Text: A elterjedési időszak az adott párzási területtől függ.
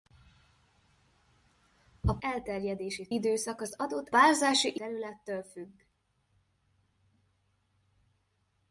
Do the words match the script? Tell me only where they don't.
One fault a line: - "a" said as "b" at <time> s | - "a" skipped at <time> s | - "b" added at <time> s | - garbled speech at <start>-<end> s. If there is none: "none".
none